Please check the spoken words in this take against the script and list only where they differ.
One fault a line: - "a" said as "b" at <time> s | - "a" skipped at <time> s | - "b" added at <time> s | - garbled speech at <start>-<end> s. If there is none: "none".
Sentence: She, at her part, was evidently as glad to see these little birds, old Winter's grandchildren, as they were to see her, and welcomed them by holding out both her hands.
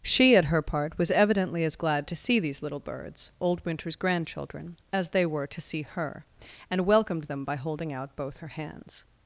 none